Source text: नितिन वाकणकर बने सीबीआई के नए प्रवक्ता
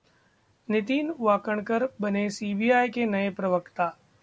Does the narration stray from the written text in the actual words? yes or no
no